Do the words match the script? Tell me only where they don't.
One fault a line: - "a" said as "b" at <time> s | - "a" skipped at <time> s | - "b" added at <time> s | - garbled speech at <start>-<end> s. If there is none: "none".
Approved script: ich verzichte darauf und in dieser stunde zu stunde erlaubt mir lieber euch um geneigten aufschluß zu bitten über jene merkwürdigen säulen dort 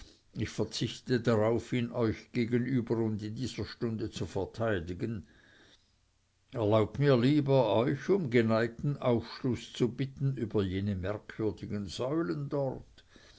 - "ihn euch gegenüber" added at 1.7 s
- "stunde" said as "verteidigen" at 4.2 s